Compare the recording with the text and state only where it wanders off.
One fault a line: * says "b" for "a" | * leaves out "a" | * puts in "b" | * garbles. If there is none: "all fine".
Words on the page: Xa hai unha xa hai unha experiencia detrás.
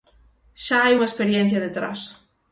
* leaves out "xa hai unha"